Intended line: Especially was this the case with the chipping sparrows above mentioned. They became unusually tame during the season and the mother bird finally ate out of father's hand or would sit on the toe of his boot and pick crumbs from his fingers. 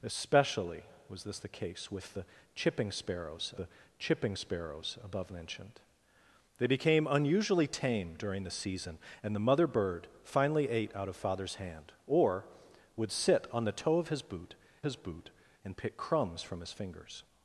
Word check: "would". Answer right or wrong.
right